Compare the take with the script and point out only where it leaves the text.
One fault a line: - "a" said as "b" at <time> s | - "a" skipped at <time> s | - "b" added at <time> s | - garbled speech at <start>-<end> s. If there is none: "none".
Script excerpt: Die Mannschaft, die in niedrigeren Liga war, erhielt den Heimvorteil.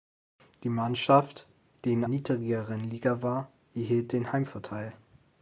none